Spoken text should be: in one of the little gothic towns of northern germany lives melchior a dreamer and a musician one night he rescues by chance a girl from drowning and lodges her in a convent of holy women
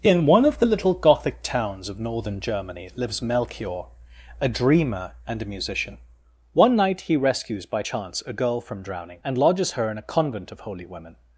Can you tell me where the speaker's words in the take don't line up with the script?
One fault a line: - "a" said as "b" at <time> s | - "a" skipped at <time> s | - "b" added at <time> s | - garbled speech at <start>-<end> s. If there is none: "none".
none